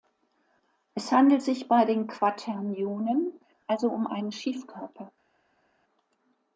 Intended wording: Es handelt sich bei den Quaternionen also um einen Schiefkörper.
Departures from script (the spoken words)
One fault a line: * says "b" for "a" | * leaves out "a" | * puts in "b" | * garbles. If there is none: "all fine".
all fine